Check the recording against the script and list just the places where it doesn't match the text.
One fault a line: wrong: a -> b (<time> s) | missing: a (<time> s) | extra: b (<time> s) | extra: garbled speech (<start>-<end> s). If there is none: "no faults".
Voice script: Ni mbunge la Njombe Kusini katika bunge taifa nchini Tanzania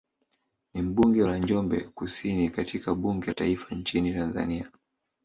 no faults